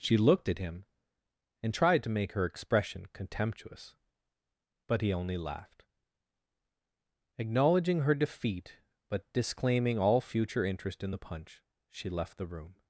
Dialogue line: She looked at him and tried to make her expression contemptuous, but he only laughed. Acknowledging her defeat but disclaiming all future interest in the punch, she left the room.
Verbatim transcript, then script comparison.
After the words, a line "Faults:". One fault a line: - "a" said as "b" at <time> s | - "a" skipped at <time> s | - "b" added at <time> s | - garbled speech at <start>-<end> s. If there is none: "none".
She looked at him and tried to make her expression contemptuous, but he only laughed. Acknowledging her defeat but disclaiming all future interest in the punch, she left the room.
Faults:
none